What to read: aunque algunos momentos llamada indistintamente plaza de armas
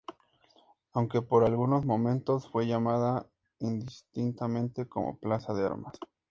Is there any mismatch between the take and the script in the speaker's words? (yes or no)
yes